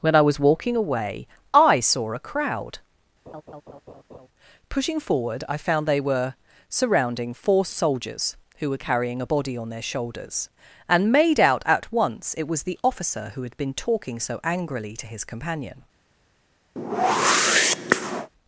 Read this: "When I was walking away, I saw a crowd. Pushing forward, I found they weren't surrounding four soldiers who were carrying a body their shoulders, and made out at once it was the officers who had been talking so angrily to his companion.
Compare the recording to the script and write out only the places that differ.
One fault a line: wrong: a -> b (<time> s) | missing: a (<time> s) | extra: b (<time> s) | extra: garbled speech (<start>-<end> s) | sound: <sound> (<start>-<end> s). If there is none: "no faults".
sound: laugh (3.3-4.3 s)
wrong: weren't -> were (6.0 s)
extra: on (9.6 s)
wrong: officers -> officer (12.8 s)
sound: whoosh (16.8-18.3 s)